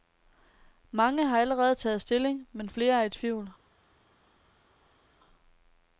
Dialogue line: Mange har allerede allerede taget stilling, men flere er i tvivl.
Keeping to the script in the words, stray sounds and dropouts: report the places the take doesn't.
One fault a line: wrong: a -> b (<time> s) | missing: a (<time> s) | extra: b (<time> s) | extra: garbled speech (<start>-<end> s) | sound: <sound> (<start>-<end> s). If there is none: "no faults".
missing: allerede (1.8 s)